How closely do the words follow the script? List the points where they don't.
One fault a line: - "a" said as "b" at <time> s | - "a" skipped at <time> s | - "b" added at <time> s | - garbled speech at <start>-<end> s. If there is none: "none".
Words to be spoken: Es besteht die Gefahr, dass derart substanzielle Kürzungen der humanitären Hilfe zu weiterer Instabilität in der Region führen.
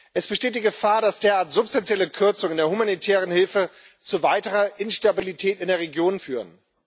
none